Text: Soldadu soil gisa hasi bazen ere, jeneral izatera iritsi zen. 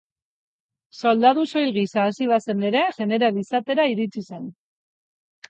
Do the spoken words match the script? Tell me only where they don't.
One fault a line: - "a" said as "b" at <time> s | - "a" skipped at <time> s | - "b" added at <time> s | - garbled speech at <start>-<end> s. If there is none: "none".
none